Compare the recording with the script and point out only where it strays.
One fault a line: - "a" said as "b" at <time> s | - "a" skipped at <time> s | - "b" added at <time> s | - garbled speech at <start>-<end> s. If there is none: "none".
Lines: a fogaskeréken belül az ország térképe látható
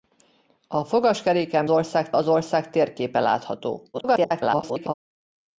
- "belül" said as "ország" at 1.7 s
- garbled speech at 3.9-4.9 s